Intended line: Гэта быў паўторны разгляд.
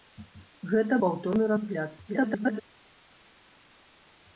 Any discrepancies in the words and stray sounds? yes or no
yes